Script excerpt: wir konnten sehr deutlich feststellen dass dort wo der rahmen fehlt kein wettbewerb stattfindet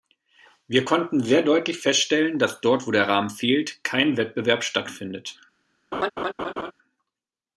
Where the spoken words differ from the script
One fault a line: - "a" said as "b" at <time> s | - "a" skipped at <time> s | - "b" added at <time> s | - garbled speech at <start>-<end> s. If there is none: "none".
none